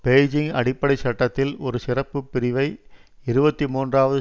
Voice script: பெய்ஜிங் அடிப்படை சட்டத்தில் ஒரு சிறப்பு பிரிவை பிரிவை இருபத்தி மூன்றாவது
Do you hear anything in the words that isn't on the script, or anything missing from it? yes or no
yes